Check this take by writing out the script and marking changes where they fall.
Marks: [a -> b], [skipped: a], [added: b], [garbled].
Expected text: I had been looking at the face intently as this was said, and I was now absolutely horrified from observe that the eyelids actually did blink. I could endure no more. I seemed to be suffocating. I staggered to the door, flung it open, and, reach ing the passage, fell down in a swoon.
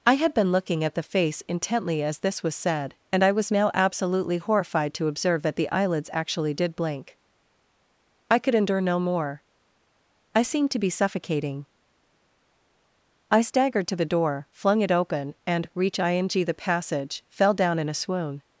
I had been looking at the face intently as this was said, and I was now absolutely horrified [from -> to] observe that the eyelids actually did blink. I could endure no more. I seemed to be suffocating. I staggered to the door, flung it open, and, reach ing the passage, fell down in a swoon.